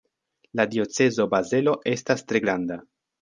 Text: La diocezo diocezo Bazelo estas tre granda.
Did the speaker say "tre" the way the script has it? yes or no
yes